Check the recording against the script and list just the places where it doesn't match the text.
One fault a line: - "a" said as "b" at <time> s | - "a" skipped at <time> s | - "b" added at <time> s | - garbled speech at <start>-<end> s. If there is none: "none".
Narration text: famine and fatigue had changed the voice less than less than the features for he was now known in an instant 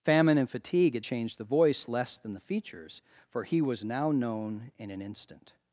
- "less than" skipped at 2.3 s